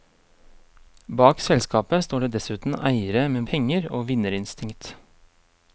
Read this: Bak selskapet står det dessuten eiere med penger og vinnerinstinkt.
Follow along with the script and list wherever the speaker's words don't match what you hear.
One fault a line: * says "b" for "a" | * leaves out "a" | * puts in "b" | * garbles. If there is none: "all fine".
all fine